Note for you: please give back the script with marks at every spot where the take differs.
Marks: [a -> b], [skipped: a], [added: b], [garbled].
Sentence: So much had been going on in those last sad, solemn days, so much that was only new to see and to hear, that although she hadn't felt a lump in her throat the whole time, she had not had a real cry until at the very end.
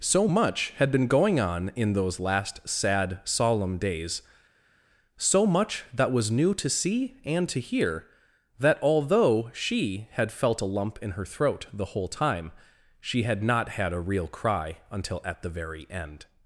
So much had been going on in those last sad, solemn days, so much that was [skipped: only] new to see and to hear, that although she [hadn't -> had] felt a lump in her throat the whole time, she had not had a real cry until at the very end.